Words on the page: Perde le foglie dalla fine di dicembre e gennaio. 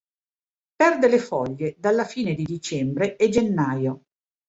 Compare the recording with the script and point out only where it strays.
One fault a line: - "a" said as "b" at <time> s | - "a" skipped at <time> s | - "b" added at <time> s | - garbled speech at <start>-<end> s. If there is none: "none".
none